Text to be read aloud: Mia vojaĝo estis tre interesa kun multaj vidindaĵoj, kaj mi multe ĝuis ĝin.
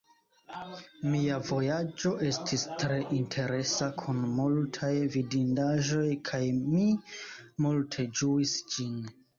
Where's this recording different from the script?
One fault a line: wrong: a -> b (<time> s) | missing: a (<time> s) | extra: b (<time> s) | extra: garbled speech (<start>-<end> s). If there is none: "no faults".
no faults